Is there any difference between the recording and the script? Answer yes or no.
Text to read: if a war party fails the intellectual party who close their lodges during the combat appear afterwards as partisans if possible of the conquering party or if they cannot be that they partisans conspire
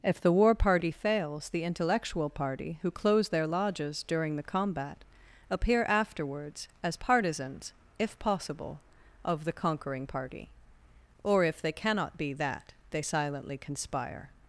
yes